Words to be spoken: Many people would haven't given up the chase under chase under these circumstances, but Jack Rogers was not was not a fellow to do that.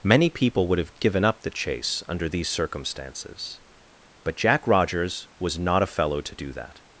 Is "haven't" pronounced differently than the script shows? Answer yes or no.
yes